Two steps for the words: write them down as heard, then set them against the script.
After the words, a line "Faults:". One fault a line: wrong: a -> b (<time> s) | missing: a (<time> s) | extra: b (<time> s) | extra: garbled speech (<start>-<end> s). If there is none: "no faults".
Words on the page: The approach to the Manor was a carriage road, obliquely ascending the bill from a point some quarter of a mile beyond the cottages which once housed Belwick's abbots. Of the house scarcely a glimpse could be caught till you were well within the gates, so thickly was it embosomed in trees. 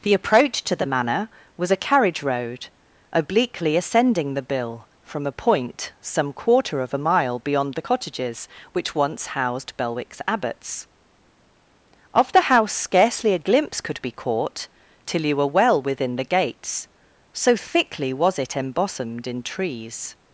The approach to the Manor was a carriage road, obliquely ascending the bill from a point some quarter of a mile beyond the cottages which once housed Belwick's abbots. Of the house scarcely a glimpse could be caught till you were well within the gates, so thickly was it embosomed in trees.
Faults:
no faults